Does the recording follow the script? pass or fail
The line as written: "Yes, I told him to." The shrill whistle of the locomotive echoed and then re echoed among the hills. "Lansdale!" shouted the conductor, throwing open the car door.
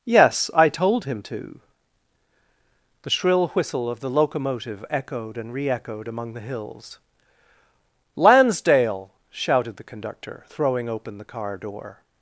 fail